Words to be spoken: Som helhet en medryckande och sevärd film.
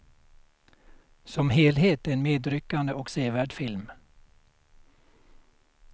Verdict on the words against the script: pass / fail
pass